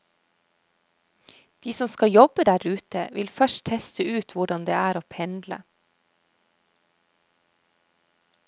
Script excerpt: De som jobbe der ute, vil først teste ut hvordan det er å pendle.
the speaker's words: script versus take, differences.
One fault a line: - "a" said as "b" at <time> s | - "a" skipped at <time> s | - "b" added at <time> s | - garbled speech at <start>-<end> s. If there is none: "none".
- "skal" added at 1.9 s